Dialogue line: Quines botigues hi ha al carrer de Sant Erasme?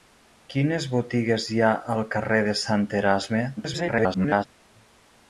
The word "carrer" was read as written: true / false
true